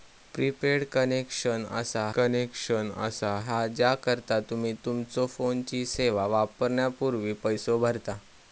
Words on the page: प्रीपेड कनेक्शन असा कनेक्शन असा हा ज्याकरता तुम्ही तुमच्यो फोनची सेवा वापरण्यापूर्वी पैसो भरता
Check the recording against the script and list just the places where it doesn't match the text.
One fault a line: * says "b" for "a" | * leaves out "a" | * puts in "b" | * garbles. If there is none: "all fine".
all fine